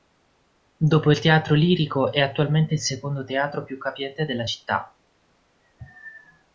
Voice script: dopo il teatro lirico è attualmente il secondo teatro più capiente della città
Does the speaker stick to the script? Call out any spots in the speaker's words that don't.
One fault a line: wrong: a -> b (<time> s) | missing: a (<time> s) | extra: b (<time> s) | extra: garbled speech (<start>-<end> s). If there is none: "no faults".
no faults